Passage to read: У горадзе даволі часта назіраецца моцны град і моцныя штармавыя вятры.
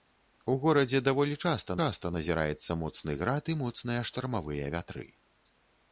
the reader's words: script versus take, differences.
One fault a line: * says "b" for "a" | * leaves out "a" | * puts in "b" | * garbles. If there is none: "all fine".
* puts in "часта"